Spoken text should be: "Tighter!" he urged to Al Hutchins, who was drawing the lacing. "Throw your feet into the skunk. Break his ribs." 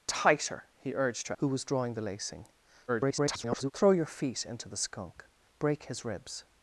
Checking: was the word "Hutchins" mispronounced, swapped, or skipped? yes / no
yes